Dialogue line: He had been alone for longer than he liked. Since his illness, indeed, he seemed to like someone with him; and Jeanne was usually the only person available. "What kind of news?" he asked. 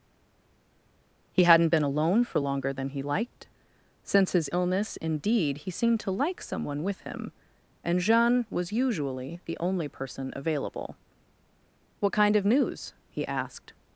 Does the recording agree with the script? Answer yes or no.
no